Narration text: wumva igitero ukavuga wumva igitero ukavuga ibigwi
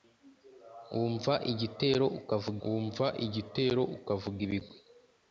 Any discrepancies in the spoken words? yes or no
no